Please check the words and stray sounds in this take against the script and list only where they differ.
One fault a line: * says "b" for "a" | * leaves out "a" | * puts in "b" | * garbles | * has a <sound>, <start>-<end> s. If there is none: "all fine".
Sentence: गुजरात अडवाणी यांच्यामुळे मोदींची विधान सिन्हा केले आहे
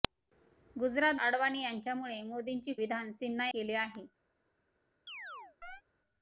* has a chirp, 5.1-5.8 s